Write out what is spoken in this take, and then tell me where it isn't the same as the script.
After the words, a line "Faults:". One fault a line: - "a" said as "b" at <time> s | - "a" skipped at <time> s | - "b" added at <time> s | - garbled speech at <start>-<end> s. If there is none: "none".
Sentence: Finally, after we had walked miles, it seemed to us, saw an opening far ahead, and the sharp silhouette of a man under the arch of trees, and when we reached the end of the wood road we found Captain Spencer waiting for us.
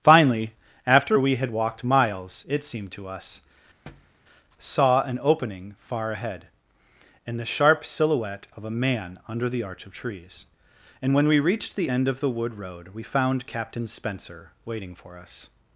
Finally, after we had walked miles, it seemed to us, saw an opening far ahead, and the sharp silhouette of a man under the arch of trees, and when we reached the end of the wood road we found Captain Spencer waiting for us.
Faults:
none